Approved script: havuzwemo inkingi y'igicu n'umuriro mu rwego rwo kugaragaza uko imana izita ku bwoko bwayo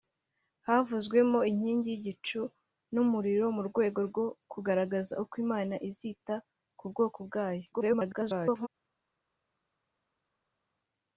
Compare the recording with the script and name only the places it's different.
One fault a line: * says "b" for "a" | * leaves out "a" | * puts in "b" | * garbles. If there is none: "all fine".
* garbles